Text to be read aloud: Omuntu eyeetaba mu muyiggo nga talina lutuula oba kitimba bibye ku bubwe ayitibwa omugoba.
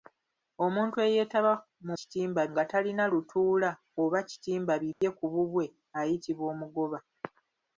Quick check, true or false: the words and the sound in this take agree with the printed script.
false